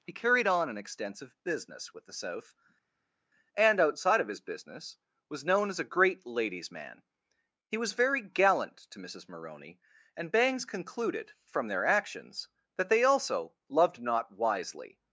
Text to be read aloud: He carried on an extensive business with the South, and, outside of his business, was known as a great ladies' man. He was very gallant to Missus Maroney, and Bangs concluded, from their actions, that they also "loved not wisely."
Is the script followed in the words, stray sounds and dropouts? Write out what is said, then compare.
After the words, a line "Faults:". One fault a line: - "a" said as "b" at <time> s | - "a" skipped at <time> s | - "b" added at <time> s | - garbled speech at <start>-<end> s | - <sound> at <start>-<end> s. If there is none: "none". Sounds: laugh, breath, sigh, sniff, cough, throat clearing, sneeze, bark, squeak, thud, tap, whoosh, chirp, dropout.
He carried on an extensive business with the South, and, outside of his business, was known as a great ladies' man. He was very gallant to Missus Maroney, and Bangs concluded, from their actions, that they also "loved not wisely."
Faults:
none